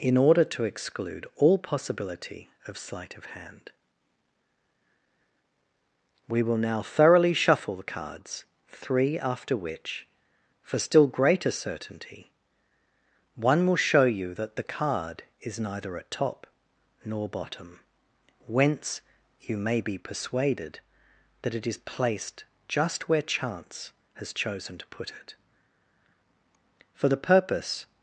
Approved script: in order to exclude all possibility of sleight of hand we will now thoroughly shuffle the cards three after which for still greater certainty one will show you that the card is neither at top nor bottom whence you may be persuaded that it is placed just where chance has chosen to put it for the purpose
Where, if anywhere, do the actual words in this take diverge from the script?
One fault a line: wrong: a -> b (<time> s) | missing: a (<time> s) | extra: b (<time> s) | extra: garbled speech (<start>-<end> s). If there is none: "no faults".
no faults